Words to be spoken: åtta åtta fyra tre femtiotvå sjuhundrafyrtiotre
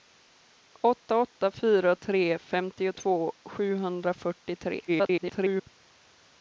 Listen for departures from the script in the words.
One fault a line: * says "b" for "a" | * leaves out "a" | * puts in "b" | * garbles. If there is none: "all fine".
* garbles